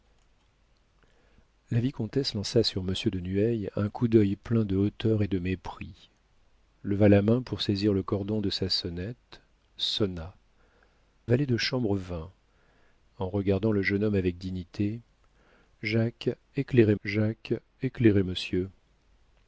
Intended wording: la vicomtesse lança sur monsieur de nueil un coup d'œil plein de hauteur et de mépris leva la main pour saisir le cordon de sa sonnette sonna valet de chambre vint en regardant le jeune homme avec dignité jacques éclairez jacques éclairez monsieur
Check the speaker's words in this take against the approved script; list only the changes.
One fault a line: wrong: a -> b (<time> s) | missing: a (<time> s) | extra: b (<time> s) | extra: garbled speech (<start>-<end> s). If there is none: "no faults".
no faults